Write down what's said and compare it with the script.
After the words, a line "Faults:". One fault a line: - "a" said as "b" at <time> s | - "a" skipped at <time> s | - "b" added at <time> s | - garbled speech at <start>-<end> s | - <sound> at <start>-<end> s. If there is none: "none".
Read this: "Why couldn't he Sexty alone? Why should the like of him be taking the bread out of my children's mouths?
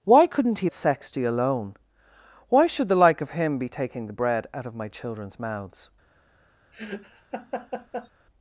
"Why couldn't he Sexty alone? Why should the like of him be taking the bread out of my children's mouths?
Faults:
- laugh at 6.7-8.1 s